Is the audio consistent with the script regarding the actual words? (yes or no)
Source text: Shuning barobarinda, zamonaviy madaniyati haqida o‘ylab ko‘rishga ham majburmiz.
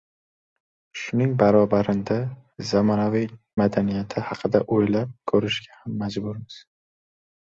yes